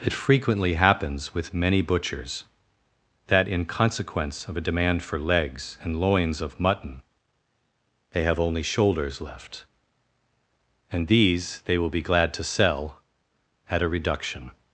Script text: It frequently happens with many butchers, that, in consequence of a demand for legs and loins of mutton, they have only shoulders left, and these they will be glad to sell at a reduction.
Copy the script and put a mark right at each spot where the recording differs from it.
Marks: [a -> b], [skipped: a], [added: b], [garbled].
It frequently happens with many butchers, that, in consequence of a demand for legs and loins of mutton, they have only shoulders left, and these they will be glad to sell at a reduction.